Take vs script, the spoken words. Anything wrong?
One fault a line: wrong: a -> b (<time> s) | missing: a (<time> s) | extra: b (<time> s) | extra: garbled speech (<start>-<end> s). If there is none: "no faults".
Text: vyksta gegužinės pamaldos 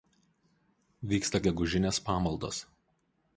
no faults